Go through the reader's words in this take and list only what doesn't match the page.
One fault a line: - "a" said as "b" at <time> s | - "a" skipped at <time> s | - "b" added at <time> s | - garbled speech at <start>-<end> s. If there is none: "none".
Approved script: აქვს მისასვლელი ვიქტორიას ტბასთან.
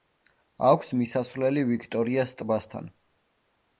none